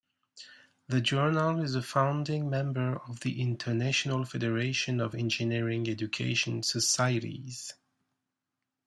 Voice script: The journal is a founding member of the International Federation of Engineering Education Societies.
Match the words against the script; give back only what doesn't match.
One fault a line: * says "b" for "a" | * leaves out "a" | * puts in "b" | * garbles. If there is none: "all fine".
all fine